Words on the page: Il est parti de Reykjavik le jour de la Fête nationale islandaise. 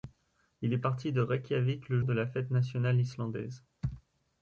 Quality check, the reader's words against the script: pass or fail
fail